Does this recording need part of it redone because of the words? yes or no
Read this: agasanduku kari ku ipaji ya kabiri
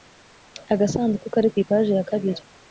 no